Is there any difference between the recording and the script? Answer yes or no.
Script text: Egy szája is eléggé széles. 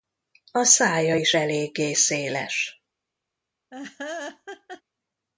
yes